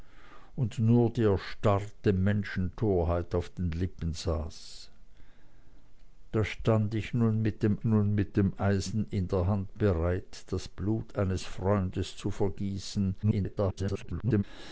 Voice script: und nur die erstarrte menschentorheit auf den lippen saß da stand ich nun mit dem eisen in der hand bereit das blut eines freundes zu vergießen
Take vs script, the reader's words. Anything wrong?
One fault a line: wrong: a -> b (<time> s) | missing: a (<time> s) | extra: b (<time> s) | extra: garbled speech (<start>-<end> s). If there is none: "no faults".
extra: nun mit dem (7.8 s)
extra: garbled speech (13.2-14.4 s)